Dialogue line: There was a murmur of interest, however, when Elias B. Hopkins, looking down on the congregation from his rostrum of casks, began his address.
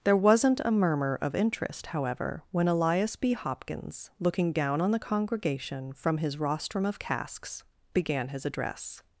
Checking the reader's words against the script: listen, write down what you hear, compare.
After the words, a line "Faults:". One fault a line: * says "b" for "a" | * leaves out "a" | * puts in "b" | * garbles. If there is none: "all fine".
There wasn't a murmur of interest, however, when Elias B. Hopkins, looking down on the congregation from his rostrum of casks, began his address.
Faults:
* says "wasn't" for "was"